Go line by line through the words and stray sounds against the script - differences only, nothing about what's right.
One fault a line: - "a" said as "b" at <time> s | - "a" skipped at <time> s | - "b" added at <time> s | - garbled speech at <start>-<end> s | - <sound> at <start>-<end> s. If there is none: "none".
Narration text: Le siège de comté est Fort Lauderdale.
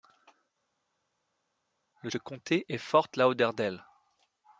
- "siège" skipped at 2.1 s